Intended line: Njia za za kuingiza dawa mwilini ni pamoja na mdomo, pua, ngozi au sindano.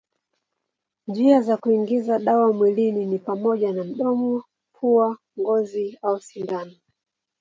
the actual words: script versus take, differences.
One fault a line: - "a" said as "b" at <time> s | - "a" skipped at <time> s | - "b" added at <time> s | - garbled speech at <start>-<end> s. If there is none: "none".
- "za" skipped at 1.6 s